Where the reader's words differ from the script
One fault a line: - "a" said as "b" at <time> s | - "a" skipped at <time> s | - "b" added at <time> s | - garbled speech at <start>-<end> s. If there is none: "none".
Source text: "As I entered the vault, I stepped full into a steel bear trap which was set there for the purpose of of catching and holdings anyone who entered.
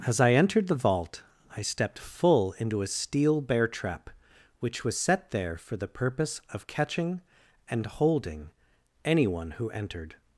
- "of" skipped at 6.7 s
- "holdings" said as "holding" at 7.9 s